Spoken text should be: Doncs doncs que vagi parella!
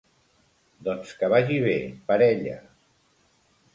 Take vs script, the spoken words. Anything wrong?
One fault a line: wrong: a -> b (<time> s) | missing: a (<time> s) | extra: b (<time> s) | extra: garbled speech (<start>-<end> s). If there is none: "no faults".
missing: doncs (1.1 s)
extra: bé (1.6 s)